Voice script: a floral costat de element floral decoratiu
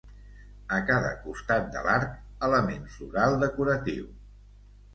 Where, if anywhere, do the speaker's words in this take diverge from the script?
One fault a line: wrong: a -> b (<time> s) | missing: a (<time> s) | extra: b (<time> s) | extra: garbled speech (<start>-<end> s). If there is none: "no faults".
wrong: floral -> cada (0.9 s)
extra: l'arc (1.9 s)